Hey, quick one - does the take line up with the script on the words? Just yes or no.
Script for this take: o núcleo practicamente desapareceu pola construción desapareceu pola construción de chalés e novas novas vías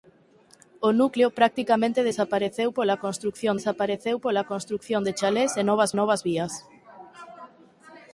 yes